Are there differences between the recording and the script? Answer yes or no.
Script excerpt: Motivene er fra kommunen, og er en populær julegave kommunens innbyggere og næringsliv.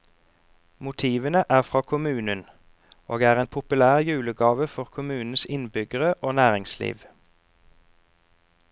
yes